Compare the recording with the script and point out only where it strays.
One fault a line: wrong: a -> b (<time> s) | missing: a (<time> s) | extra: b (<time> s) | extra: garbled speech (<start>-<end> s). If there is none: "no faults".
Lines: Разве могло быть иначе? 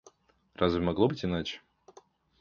no faults